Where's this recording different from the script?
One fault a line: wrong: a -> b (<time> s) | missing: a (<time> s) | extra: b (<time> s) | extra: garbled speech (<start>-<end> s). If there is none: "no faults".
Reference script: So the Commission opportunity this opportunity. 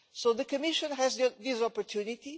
wrong: opportunity -> has (0.9 s)